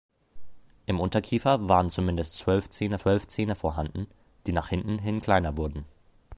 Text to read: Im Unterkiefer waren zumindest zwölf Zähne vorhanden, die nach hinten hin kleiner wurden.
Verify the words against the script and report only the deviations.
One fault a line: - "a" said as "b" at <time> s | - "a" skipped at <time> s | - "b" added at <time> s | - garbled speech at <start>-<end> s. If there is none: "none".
- "zwölf Zähne" added at 3.0 s